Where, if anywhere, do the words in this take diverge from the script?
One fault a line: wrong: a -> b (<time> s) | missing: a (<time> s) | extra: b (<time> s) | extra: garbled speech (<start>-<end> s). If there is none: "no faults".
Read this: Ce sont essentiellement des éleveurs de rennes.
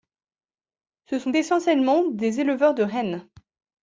no faults